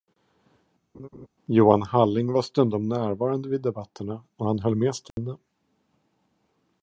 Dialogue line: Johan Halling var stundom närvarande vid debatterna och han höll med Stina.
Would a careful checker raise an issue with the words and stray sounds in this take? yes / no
yes